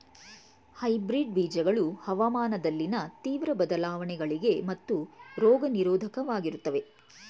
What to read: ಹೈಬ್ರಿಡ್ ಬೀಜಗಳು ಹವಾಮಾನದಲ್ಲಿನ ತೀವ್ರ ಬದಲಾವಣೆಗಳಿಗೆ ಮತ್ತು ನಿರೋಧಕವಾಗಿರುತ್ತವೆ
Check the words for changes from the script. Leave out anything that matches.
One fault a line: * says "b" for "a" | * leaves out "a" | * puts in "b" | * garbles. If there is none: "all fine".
* puts in "ರೋಗ"